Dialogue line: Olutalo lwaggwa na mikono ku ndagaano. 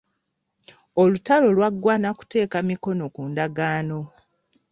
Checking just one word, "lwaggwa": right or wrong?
right